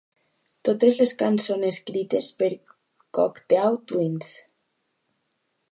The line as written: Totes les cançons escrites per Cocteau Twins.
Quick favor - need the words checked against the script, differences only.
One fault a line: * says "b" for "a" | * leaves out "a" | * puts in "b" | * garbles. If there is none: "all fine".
all fine